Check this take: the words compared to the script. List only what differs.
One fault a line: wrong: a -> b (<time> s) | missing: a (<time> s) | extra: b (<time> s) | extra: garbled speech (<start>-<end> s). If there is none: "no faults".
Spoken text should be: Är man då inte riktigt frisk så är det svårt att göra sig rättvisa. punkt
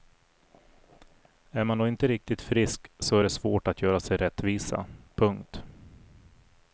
no faults